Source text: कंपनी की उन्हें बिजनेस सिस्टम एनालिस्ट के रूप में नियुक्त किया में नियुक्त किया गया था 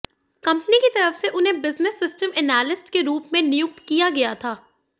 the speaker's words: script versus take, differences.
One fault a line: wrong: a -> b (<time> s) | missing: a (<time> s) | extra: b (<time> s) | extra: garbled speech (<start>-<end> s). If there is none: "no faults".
extra: तरफ से (0.9 s)
missing: में नियुक्त किया (4.1 s)